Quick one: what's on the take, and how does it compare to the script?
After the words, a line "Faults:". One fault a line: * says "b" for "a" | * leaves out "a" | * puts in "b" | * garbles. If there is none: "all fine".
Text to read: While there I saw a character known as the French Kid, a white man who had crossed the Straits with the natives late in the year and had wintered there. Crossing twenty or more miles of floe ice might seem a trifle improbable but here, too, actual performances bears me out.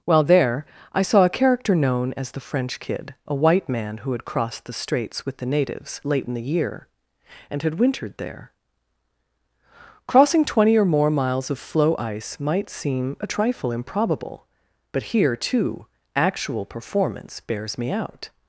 While there I saw a character known as the French Kid, a white man who had crossed the Straits with the natives late in the year and had wintered there. Crossing twenty or more miles of floe ice might seem a trifle improbable but here, too, actual performance bears me out.
Faults:
* says "performance" for "performances"